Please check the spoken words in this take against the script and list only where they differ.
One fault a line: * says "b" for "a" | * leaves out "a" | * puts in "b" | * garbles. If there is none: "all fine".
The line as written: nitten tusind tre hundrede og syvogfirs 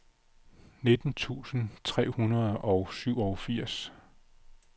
all fine